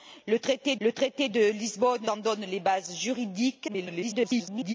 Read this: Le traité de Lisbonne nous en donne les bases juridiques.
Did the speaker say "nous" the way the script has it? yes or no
no